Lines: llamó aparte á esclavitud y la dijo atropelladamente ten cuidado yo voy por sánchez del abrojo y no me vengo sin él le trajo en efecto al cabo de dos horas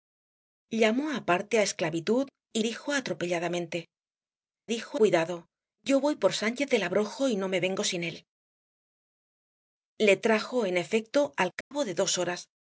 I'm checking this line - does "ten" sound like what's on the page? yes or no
no